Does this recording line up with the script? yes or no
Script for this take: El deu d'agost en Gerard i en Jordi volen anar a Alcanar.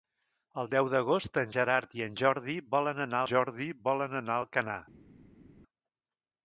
no